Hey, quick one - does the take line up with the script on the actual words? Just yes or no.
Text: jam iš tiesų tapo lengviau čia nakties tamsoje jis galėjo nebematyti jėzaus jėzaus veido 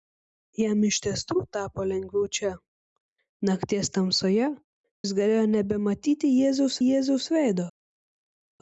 yes